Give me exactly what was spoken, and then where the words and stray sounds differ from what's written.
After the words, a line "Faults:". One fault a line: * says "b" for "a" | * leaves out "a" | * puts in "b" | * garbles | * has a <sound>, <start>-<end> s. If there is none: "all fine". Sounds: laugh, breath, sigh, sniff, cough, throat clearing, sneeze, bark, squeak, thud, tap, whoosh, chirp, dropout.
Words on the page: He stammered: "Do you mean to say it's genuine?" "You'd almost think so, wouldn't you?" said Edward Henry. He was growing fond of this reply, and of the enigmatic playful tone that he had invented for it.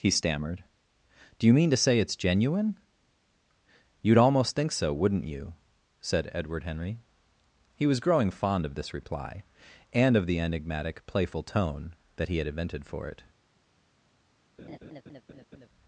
He stammered: "Do you mean to say it's genuine?" "You'd almost think so, wouldn't you?" said Edward Henry. He was growing fond of this reply, and of the enigmatic playful tone that he had invented for it.
Faults:
* has a laugh, 14.6-15.7 s